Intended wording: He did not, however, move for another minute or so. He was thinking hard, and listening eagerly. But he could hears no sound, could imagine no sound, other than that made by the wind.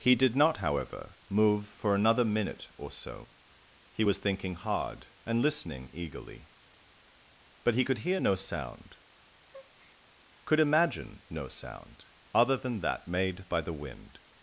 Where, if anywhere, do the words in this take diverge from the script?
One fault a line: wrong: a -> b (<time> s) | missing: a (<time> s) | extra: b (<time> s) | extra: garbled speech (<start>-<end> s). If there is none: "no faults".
wrong: hears -> hear (8.0 s)